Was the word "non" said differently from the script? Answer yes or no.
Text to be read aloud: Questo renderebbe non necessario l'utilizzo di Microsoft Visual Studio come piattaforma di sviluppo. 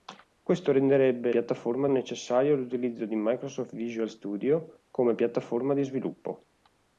yes